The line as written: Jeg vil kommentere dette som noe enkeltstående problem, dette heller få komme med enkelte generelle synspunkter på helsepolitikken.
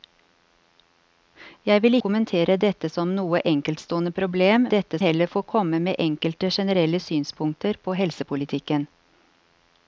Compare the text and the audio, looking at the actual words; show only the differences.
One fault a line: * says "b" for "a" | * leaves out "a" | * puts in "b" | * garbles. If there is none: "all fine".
all fine